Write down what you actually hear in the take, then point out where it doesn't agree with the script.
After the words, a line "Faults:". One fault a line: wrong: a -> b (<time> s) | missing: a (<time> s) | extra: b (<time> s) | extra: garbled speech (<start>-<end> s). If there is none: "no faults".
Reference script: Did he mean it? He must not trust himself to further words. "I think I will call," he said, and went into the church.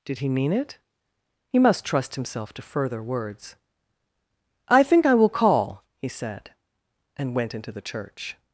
Did he mean it? He must trust himself to further words. "I think I will call," he said, and went into the church.
Faults:
missing: not (1.9 s)